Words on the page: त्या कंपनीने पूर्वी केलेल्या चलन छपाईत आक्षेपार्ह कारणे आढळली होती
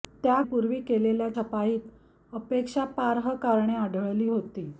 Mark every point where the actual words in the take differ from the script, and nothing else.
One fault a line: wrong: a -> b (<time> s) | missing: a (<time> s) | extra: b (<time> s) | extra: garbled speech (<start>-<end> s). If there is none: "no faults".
missing: कंपनीने (0.4 s)
missing: चलन (1.3 s)